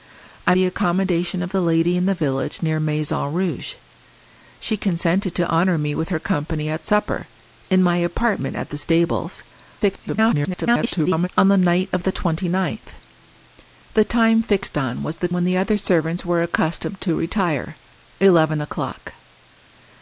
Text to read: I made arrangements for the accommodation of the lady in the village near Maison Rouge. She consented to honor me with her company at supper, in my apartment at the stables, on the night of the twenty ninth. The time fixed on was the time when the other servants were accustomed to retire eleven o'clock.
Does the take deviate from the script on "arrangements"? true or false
true